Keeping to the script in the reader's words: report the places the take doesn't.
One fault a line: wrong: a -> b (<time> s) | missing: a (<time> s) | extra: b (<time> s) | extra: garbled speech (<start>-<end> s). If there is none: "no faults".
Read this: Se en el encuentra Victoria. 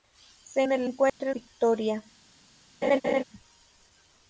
no faults